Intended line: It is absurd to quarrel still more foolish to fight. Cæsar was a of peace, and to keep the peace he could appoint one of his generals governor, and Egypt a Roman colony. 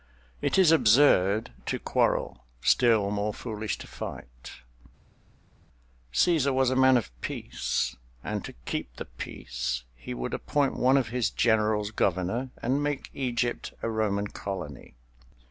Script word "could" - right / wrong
wrong